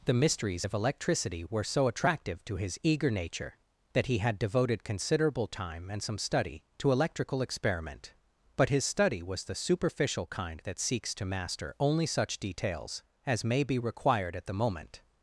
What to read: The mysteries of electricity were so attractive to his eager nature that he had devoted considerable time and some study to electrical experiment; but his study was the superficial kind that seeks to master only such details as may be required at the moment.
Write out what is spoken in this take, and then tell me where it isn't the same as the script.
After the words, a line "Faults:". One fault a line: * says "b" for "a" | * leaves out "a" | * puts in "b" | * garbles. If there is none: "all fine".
The mysteries of electricity were so attractive to his eager nature that he had devoted considerable time and some study to electrical experiment; but his study was the superficial kind that seeks to master only such details as may be required at the moment.
Faults:
all fine